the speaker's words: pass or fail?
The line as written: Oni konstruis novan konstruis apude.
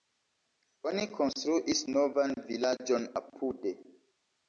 fail